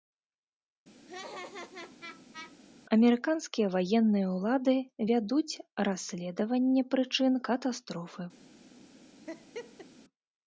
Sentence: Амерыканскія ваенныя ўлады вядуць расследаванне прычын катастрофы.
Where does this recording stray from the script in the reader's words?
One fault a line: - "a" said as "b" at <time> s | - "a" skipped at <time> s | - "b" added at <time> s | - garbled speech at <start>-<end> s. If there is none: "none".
none